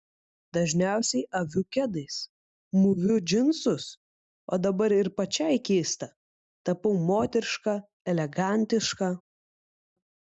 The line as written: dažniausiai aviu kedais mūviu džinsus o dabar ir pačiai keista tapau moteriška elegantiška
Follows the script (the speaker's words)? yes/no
yes